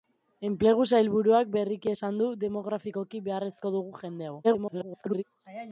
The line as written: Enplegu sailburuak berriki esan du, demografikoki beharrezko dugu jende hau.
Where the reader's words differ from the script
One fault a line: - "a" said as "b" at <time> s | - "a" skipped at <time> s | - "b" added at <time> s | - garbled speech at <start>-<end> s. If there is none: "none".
- garbled speech at 4.4-5.2 s